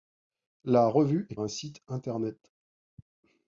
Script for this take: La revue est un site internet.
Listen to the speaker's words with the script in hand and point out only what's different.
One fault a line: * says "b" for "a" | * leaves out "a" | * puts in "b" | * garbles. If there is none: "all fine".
all fine